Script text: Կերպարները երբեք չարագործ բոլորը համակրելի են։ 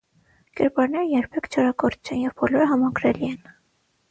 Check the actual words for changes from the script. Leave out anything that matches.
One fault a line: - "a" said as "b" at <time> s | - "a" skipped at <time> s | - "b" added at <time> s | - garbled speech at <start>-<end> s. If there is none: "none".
- "չեն և" added at 2.1 s